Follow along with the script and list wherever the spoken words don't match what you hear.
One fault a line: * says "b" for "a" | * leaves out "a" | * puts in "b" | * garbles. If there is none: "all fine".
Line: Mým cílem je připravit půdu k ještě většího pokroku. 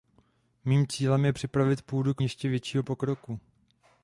all fine